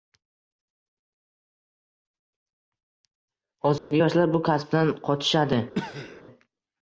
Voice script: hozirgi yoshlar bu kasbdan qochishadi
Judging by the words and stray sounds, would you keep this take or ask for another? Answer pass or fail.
fail